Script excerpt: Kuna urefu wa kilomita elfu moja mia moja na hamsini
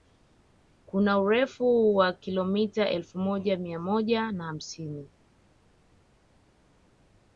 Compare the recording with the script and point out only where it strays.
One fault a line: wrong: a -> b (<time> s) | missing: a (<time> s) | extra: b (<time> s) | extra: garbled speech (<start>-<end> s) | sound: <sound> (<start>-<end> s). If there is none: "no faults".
no faults